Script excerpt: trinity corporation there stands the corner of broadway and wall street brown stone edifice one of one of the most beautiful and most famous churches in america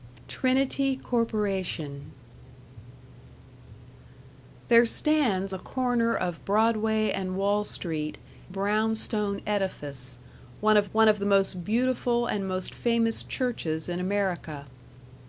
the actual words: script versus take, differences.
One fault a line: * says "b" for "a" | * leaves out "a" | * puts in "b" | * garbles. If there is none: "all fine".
all fine